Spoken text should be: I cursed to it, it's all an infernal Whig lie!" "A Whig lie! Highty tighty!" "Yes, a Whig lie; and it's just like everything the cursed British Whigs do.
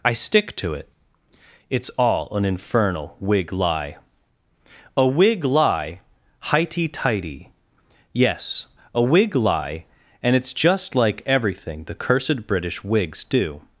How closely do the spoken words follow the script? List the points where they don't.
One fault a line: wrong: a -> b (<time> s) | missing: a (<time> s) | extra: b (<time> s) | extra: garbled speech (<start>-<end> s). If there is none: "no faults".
wrong: cursed -> stick (0.1 s)